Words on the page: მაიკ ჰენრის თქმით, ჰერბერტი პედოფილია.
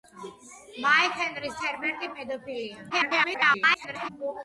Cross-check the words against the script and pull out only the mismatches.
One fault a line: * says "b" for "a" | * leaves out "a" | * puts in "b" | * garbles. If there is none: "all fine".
* leaves out "თქმით"
* garbles